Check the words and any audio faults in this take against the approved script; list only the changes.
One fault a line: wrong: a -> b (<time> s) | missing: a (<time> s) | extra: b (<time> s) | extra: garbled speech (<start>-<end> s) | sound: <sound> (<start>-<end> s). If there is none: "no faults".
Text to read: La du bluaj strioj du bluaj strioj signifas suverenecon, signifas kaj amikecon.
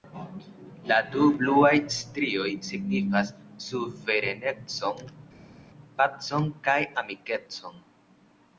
missing: du bluaj strioj (2.5 s)
wrong: signifas -> pacon (6.0 s)